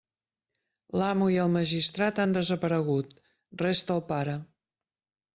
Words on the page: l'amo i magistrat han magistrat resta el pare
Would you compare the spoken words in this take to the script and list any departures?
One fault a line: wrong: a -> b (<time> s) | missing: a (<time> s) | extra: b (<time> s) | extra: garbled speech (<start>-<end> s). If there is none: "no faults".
extra: el (1.4 s)
wrong: magistrat -> desaparegut (2.4 s)